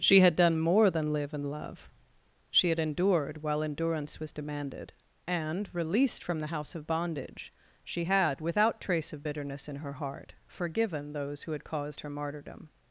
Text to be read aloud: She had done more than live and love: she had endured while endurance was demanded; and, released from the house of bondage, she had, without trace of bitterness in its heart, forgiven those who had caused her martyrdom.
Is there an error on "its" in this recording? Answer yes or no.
yes